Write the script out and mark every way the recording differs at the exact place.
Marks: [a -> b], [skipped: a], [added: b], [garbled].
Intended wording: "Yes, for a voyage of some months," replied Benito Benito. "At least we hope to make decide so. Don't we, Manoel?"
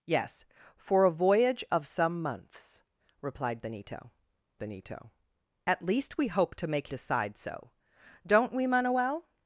"Yes, for a voyage of some months," replied Benito Benito. "At least we hope to make decide so. Don't we, Manoel?"